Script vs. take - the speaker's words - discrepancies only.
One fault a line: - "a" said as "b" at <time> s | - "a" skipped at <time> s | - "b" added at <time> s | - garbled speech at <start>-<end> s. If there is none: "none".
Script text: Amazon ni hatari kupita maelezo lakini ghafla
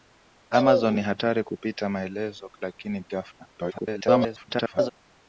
- garbled speech at 3.5-4.9 s